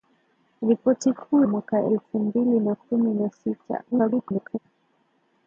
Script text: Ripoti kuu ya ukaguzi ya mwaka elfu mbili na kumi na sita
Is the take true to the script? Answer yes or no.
no